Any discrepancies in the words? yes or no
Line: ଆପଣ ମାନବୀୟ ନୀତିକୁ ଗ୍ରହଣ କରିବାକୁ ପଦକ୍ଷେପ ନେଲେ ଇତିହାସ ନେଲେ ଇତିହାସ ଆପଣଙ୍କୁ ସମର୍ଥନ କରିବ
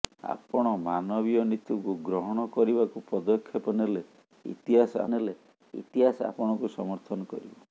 no